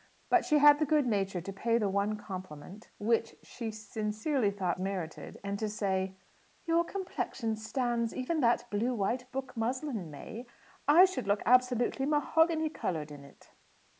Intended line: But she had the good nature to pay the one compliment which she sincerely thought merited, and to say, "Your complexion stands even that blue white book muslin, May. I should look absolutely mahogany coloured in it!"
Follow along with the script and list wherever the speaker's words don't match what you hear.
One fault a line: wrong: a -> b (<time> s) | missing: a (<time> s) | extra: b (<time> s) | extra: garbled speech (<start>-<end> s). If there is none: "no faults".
no faults